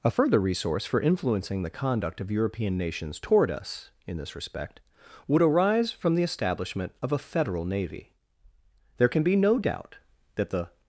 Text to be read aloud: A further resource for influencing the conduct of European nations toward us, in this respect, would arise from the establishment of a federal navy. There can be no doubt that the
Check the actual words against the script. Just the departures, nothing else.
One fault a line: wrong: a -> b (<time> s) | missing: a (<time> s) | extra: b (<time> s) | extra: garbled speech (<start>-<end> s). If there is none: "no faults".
no faults